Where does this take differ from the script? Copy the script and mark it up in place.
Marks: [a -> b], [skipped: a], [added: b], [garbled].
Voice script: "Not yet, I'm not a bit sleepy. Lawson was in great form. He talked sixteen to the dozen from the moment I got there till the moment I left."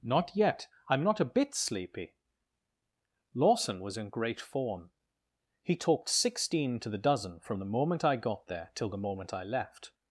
"Not yet, I'm not a bit sleepy. Lawson was in great form. He talked sixteen to the dozen from the moment I got there till the moment I left."